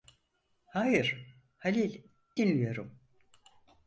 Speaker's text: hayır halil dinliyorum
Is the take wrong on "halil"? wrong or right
right